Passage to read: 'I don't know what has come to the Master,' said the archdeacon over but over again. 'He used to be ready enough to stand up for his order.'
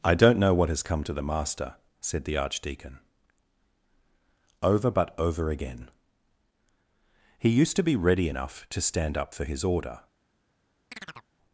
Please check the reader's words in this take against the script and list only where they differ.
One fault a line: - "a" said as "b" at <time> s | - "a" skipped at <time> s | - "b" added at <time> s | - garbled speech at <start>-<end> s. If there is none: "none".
none